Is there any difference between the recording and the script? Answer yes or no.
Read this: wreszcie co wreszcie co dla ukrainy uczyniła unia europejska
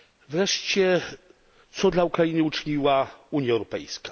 yes